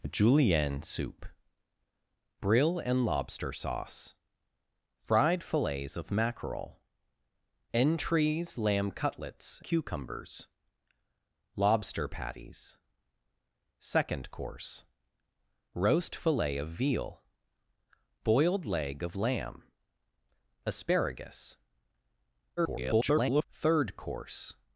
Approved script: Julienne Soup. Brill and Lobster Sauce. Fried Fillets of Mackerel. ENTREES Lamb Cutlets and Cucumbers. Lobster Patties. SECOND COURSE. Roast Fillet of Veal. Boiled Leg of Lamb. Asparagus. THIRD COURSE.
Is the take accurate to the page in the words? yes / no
no